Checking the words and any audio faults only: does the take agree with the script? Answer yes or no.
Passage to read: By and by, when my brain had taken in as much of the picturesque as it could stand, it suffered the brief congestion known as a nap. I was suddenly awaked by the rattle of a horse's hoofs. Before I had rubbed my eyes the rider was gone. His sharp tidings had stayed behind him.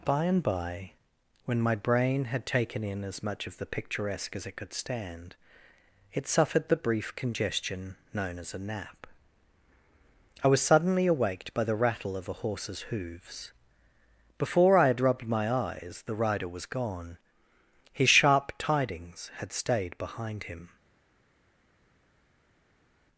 yes